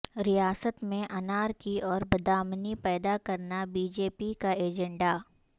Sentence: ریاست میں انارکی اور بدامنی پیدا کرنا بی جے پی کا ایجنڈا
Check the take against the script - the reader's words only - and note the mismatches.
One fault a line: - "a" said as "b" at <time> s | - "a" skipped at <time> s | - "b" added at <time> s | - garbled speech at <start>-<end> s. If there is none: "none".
none